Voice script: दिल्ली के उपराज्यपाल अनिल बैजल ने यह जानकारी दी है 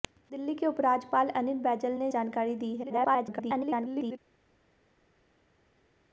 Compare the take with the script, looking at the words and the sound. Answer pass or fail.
fail